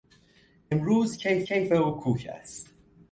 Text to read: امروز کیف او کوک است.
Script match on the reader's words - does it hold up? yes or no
no